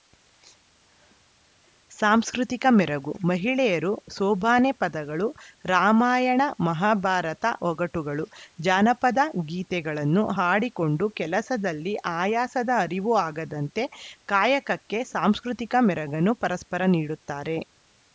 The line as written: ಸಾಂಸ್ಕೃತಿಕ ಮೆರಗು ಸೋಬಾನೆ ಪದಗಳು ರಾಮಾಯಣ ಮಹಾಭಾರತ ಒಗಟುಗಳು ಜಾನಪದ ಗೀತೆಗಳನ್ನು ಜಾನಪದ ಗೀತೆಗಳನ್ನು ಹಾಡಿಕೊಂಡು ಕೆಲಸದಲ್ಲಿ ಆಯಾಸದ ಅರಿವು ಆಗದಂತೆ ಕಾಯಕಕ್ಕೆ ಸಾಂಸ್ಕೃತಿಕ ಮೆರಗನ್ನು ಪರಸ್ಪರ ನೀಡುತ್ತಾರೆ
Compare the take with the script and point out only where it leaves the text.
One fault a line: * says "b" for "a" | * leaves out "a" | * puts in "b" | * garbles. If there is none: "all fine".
* puts in "ಮಹಿಳೆಯರು"
* leaves out "ಜಾನಪದ ಗೀತೆಗಳನ್ನು"